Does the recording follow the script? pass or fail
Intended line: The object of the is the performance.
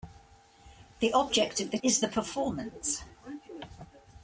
pass